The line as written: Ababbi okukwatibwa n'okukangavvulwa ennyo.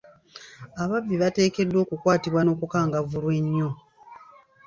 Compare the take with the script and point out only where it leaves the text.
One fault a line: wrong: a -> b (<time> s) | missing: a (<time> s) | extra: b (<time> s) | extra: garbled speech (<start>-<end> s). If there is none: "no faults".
extra: bateekeddwa (1.2 s)